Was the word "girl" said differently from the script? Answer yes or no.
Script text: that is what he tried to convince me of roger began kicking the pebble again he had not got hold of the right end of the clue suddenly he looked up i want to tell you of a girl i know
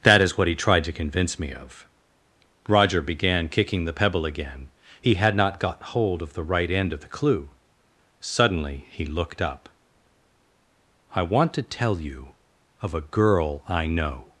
no